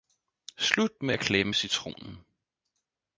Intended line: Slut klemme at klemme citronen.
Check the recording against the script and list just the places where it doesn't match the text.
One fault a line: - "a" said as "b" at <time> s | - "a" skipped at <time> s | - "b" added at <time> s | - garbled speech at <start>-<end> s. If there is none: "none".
- "klemme" said as "med" at 1.0 s